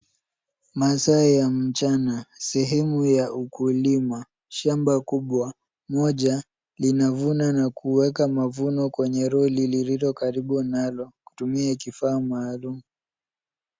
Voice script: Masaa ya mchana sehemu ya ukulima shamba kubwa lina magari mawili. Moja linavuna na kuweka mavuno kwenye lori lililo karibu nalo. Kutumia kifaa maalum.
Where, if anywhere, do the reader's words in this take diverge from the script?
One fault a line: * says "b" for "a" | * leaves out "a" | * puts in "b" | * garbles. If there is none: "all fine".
* leaves out "lina magari mawili"